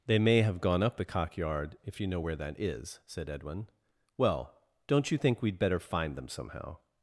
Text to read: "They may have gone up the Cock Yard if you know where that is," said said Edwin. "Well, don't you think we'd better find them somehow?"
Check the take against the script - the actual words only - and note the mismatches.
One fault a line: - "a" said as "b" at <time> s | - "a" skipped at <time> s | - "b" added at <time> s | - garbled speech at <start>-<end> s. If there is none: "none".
- "said" skipped at 3.3 s